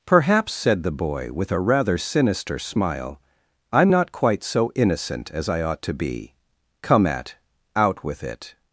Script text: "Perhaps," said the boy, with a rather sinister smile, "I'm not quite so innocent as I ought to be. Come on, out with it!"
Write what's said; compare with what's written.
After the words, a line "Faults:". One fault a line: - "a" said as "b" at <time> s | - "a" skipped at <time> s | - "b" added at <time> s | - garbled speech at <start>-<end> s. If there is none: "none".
"Perhaps," said the boy, with a rather sinister smile, "I'm not quite so innocent as I ought to be. Come at, out with it!"
Faults:
- "on" said as "at" at 7.0 s